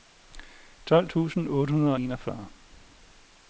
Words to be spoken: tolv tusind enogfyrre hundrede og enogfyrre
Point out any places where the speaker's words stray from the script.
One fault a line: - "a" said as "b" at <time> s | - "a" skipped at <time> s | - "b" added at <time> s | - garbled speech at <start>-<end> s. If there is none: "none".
- "enogfyrre" said as "otte" at 1.5 s